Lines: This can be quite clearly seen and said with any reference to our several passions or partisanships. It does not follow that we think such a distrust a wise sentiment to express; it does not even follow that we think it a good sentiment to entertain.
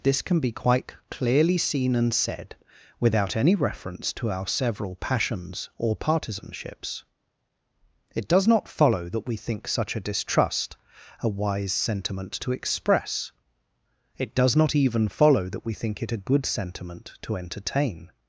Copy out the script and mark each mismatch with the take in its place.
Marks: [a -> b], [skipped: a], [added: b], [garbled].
This can be quite clearly seen and said [with -> without] any reference to our several passions or partisanships. It does not follow that we think such a distrust a wise sentiment to express; it does not even follow that we think it a good sentiment to entertain.